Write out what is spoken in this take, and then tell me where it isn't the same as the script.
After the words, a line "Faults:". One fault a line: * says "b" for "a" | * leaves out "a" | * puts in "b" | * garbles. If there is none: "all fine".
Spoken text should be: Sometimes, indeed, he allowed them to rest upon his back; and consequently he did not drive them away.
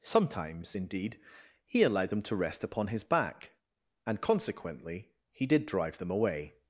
Sometimes, indeed, he allowed them to rest upon his back; and consequently he did drive them away.
Faults:
* leaves out "not"